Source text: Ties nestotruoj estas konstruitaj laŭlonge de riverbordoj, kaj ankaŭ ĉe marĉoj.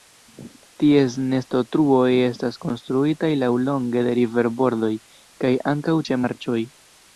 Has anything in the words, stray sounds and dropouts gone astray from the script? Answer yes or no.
no